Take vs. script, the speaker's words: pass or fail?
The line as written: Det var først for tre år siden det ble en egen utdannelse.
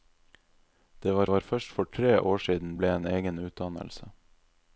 fail